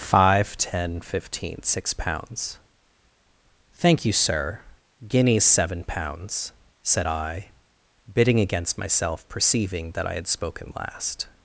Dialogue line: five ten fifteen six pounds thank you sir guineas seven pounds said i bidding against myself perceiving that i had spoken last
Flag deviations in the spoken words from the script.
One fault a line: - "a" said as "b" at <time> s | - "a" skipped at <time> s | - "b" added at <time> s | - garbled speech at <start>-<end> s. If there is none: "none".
none